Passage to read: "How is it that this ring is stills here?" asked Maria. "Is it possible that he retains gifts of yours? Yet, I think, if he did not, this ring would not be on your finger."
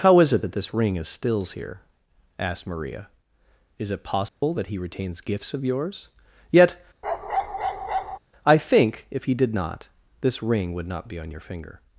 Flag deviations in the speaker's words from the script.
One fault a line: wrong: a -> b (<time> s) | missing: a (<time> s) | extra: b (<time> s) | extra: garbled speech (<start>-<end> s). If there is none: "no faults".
no faults